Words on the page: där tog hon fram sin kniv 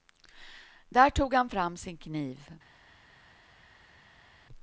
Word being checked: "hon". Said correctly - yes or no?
no